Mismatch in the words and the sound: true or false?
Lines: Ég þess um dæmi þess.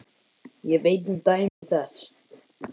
true